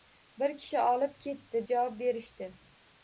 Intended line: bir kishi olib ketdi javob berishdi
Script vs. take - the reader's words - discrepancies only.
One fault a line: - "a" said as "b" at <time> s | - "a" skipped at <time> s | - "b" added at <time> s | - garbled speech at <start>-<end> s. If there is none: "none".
none